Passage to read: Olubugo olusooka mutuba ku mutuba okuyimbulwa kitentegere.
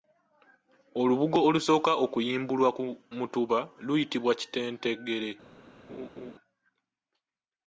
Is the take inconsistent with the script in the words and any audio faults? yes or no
yes